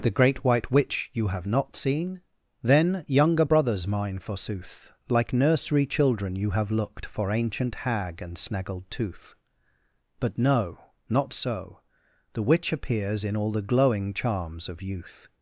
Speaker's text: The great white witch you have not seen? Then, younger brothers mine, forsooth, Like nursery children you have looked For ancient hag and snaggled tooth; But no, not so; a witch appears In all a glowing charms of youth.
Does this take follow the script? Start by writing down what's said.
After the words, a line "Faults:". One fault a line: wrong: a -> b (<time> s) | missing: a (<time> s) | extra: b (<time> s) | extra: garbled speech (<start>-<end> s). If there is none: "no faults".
The great white witch you have not seen? Then, younger brothers mine, forsooth, Like nursery children you have looked For ancient hag and snaggled tooth; But no, not so; the witch appears In all the glowing charms of youth.
Faults:
wrong: a -> the (12.3 s)
wrong: a -> the (13.5 s)